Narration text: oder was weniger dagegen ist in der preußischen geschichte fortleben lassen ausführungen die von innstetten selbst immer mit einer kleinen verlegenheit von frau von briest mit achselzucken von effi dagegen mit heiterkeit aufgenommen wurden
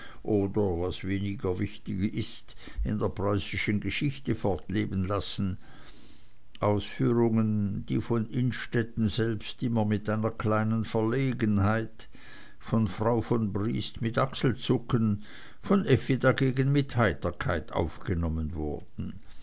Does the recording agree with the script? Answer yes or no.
no